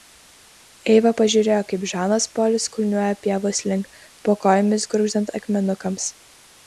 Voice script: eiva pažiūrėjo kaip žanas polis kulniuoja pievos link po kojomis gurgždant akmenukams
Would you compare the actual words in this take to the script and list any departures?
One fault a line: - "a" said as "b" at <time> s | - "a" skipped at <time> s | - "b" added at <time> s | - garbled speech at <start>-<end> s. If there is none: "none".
none